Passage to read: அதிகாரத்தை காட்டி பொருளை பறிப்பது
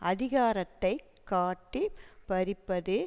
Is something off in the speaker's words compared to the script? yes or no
yes